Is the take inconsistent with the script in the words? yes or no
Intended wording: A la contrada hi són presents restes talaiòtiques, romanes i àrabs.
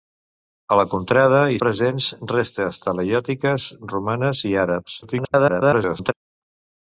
yes